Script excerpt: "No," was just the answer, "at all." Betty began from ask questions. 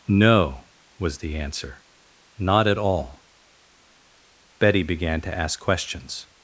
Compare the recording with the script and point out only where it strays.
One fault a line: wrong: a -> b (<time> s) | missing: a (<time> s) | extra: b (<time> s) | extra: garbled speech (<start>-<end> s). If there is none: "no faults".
missing: just (1.2 s)
extra: not (2.4 s)
wrong: from -> to (5.2 s)